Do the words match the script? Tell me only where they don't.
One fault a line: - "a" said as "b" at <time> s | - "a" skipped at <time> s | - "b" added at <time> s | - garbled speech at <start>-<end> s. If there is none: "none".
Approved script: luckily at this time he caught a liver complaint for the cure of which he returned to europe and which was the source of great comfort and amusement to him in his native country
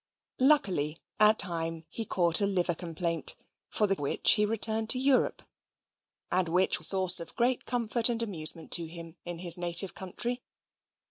- "this" skipped at 1.4 s
- "cure of" skipped at 4.0 s
- "was" skipped at 6.8 s